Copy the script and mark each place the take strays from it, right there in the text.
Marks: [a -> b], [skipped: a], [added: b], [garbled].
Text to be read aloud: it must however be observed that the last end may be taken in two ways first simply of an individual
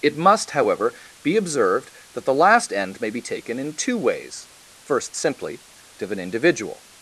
it must however be observed that the last end may be taken in two ways first simply of an individual